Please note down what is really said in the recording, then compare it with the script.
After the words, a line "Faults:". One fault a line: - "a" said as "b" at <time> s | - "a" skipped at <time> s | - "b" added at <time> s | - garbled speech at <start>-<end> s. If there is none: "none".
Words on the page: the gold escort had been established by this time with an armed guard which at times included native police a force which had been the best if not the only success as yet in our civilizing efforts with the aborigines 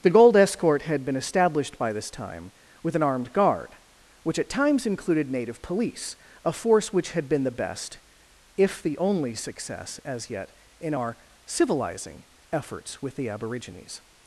the gold escort had been established by this time with an armed guard which at times included native police a force which had been the best if the only success as yet in our civilizing efforts with the aborigines
Faults:
- "not" skipped at 8.8 s